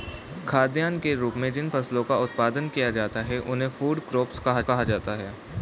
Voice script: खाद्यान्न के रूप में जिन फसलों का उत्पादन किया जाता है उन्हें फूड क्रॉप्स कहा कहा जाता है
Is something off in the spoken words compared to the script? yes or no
no